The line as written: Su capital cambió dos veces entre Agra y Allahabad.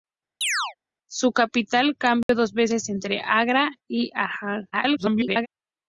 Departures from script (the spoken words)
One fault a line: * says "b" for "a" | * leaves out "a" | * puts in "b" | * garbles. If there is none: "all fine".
* garbles